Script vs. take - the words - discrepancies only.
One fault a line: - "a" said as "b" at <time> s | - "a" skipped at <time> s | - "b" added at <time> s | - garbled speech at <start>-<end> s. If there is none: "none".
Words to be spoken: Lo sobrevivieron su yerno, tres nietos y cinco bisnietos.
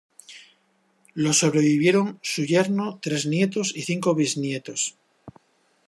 none